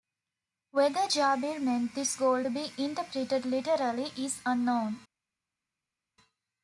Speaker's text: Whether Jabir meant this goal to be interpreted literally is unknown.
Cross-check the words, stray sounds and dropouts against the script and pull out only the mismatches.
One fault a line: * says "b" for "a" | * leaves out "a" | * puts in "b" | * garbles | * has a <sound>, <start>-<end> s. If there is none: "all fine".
all fine